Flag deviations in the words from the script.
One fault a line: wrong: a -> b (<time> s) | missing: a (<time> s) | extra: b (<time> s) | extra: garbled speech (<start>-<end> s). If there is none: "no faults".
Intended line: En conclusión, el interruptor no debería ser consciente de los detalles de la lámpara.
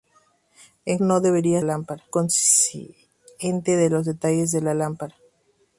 missing: conclusión el interruptor (1.0 s)
wrong: ser -> lámpara (1.6 s)